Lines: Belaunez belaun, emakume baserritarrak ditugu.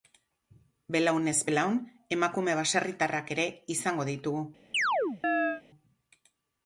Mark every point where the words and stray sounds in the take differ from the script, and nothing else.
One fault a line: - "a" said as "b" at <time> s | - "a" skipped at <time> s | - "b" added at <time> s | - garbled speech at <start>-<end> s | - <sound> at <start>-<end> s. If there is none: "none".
- "ere izango" added at 3.4 s
- chirp at 4.7-5.6 s